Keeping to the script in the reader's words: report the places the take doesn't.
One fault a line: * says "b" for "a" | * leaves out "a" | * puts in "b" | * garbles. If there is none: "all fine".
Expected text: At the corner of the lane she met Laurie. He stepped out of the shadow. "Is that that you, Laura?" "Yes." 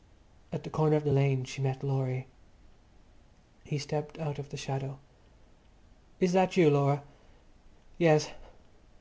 * leaves out "that"